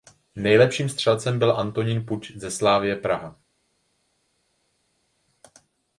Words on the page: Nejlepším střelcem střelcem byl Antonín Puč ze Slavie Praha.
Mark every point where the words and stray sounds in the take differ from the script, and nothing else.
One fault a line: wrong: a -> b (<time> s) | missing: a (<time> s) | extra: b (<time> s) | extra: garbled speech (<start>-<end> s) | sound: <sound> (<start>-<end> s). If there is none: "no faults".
missing: střelcem (1.4 s)